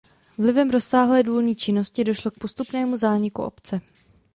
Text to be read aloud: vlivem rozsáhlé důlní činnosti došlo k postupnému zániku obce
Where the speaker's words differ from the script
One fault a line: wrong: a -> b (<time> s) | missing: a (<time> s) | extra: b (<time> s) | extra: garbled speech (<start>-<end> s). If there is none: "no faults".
no faults